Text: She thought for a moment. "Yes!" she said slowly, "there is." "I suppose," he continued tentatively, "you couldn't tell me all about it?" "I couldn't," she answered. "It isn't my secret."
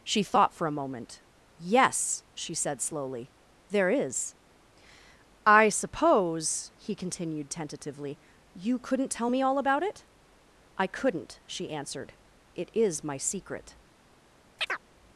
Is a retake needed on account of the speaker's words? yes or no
yes